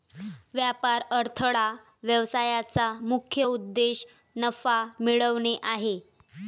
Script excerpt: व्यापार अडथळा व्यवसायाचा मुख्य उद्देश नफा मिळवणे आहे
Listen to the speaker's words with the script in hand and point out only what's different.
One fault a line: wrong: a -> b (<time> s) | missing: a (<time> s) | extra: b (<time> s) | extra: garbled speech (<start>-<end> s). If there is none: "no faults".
no faults